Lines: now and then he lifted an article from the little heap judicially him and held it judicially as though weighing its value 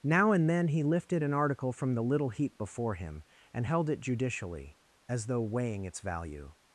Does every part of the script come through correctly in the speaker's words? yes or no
no